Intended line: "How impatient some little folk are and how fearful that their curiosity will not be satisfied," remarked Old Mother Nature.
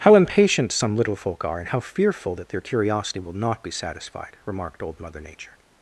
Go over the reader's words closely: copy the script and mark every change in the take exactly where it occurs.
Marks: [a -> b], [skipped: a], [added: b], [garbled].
"How impatient some little folk are and how fearful that their curiosity will not be satisfied," remarked Old Mother Nature.